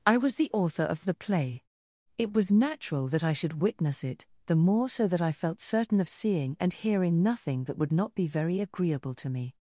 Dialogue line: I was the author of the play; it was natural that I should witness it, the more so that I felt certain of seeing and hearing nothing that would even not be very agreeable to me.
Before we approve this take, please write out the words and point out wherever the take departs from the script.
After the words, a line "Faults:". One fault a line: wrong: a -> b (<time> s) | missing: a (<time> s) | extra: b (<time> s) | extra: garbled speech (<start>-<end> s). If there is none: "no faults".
I was the author of the play; it was natural that I should witness it, the more so that I felt certain of seeing and hearing nothing that would not be very agreeable to me.
Faults:
missing: even (7.9 s)